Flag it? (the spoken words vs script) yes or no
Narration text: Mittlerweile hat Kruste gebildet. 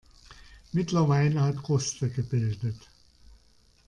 no